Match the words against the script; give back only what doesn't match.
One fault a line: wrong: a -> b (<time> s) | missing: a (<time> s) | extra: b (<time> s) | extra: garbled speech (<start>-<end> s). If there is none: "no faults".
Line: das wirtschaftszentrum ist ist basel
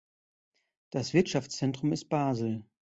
missing: ist (2.1 s)